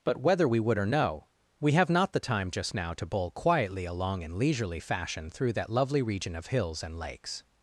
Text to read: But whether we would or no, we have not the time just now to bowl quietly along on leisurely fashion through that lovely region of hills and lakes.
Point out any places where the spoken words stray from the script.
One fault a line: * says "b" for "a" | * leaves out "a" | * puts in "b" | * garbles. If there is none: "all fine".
* says "in" for "on"